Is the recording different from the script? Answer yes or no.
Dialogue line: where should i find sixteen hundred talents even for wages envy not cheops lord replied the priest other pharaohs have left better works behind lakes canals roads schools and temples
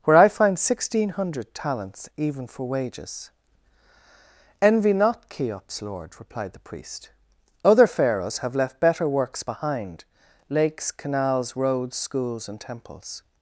yes